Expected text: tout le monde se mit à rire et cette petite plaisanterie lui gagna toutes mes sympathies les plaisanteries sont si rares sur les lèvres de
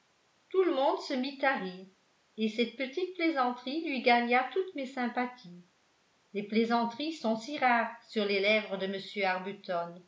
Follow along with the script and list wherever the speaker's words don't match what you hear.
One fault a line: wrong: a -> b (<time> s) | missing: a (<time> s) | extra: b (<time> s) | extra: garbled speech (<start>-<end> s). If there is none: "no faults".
no faults